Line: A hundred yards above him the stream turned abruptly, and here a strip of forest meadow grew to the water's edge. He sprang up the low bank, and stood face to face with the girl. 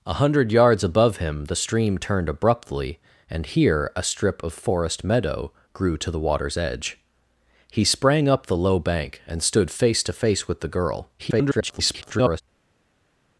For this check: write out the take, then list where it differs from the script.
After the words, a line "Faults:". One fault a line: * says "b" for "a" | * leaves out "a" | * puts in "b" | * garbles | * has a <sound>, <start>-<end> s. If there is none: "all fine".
A hundred yards above him the stream turned abruptly, and here a strip of forest meadow grew to the water's edge. He sprang up the low bank, and stood face to face with the girl. [garbled]
Faults:
* garbles